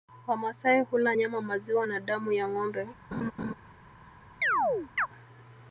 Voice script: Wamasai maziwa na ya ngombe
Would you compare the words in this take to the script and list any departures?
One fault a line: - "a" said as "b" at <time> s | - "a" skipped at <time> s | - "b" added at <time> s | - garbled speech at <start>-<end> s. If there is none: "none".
- "hula nyama" added at 0.8 s
- "damu" added at 2.0 s